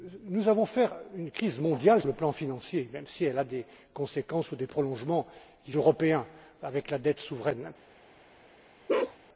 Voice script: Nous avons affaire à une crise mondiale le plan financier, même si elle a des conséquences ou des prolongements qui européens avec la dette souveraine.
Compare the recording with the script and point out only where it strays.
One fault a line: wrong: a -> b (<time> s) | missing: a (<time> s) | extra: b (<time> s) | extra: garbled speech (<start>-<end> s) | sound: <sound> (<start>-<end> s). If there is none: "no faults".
sound: bark (8.9-9.2 s)